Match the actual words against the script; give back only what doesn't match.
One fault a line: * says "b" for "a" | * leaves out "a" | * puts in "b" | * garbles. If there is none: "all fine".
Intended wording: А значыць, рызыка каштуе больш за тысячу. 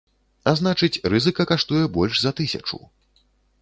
all fine